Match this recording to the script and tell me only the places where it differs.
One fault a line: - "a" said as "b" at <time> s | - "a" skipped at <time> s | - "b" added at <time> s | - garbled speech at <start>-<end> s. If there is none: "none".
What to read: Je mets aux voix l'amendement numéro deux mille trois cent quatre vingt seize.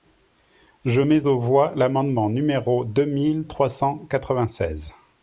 none